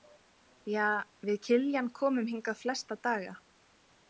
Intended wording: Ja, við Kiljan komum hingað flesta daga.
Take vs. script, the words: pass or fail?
pass